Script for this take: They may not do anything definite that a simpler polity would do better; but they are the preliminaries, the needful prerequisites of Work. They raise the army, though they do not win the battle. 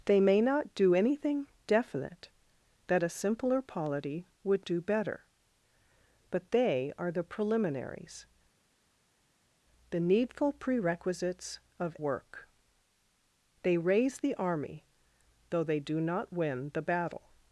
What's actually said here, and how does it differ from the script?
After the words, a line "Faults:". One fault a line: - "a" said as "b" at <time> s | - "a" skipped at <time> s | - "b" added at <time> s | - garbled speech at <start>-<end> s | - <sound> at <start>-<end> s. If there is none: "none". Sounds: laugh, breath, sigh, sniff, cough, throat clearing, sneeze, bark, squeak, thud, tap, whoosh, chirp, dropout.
They may not do anything definite that a simpler polity would do better; but they are the preliminaries, the needful prerequisites of Work. They raise the army, though they do not win the battle.
Faults:
none